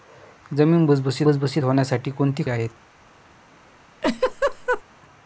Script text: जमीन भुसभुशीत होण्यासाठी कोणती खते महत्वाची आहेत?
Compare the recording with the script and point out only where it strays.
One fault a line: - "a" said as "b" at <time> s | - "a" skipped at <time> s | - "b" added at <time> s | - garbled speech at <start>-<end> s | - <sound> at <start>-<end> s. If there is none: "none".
- "भुसभुशीत" added at 1.2 s
- "खते महत्वाची" skipped at 2.4 s
- laugh at 4.0-4.8 s